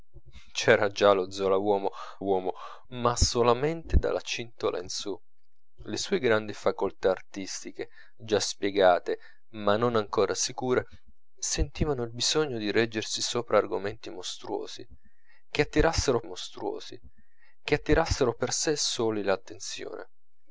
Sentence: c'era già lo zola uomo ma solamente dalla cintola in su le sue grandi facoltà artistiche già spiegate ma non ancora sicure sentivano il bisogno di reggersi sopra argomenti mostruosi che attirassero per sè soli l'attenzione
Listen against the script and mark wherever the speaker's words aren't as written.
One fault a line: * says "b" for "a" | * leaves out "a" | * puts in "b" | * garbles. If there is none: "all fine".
* puts in "uomo"
* puts in "mostruosi che attirassero"